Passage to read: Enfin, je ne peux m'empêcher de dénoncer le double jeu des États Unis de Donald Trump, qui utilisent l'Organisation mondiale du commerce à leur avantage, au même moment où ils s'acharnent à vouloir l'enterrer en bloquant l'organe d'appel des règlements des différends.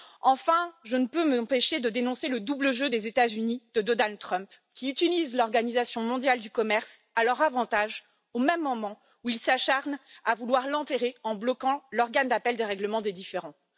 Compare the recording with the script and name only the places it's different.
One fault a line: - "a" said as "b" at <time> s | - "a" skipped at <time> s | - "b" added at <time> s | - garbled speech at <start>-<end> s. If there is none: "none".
none